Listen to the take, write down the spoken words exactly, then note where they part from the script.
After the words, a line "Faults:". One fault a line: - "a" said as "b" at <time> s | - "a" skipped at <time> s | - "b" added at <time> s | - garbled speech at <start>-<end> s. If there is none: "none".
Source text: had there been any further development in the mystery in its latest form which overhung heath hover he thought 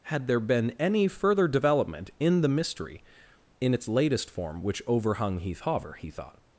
had there been any further development in the mystery in its latest form which overhung heath hover he thought
Faults:
none